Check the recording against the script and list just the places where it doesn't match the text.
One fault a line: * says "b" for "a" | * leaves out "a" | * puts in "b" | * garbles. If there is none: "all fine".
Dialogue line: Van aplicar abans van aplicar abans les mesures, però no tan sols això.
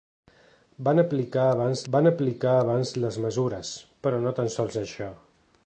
all fine